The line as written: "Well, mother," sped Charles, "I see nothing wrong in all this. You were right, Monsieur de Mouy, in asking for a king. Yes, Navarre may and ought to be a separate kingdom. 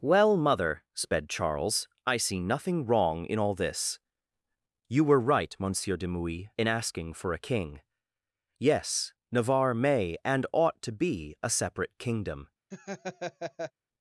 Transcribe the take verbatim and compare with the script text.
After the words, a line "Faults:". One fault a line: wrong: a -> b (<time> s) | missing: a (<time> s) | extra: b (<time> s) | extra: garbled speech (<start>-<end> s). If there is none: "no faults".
"Well, mother," sped Charles, "I see nothing wrong in all this. You were right, Monsieur de Mouy, in asking for a king. Yes, Navarre may and ought to be a separate kingdom.
Faults:
no faults